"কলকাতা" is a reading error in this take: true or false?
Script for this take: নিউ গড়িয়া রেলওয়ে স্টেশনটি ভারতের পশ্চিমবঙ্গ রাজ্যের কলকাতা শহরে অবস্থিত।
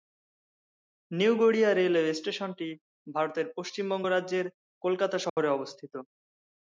false